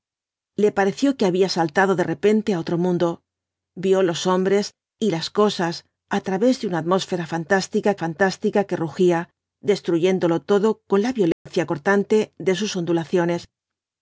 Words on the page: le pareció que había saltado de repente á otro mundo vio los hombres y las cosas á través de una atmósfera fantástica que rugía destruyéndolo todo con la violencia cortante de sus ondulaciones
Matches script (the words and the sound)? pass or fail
fail